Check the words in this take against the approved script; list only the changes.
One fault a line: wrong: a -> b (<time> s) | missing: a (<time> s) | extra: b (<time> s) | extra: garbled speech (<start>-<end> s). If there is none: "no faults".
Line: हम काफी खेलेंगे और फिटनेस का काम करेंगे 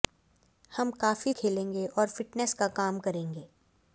no faults